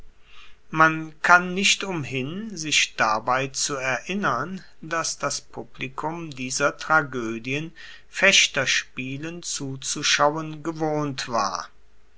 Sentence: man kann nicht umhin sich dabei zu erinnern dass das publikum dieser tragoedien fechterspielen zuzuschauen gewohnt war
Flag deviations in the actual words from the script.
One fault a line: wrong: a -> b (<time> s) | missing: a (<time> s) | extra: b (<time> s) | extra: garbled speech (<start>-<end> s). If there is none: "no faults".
no faults